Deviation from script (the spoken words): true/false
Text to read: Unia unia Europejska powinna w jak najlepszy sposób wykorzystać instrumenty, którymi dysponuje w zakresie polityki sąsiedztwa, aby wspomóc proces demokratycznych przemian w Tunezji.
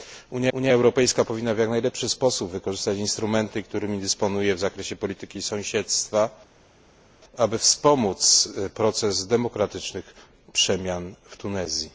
false